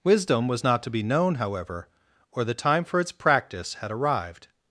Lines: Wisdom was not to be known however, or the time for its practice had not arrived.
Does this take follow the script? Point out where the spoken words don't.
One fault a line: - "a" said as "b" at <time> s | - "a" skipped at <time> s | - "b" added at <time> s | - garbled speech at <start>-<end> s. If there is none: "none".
- "not" skipped at 3.9 s